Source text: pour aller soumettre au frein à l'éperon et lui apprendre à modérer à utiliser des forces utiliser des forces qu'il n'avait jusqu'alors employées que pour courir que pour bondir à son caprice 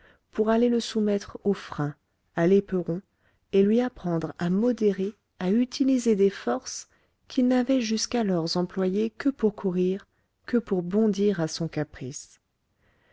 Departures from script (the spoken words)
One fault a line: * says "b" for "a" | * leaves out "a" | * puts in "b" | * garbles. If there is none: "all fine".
* puts in "le"
* leaves out "utiliser des forces"